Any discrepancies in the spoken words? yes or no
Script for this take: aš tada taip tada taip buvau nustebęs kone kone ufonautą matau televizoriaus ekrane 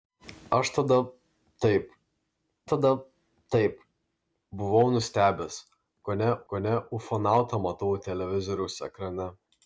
no